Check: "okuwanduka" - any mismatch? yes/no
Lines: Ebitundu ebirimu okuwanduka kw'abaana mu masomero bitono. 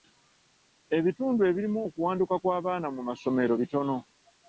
no